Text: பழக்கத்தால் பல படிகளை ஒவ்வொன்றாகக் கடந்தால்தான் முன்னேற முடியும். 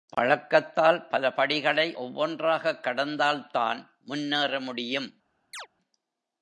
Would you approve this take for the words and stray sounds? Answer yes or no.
no